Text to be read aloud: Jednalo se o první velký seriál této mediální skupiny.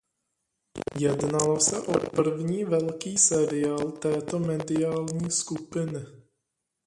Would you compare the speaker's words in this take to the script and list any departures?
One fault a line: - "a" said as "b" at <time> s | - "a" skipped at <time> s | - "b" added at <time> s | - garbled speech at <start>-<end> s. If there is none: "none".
none